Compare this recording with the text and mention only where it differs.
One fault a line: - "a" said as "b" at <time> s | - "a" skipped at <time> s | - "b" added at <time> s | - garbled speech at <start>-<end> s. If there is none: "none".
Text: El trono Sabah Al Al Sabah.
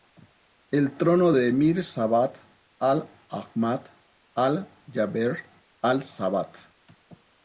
- "de Emir" added at 1.3 s
- "Ahmad Al Jaber" added at 3.3 s